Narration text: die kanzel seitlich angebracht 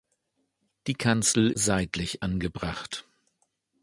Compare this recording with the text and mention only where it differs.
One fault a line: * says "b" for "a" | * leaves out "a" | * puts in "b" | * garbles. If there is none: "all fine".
all fine